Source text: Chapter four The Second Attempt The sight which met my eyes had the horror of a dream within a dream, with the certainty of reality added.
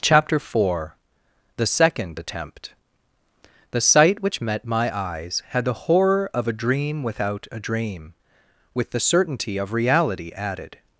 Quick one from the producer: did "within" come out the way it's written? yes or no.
no